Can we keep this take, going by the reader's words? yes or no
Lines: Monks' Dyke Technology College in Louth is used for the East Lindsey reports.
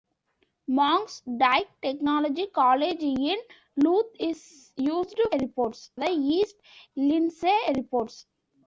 no